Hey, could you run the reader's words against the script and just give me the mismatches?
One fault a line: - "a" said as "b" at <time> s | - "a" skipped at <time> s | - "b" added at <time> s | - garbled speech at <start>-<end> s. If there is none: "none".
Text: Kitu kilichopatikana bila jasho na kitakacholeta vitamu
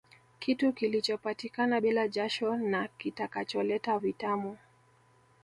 none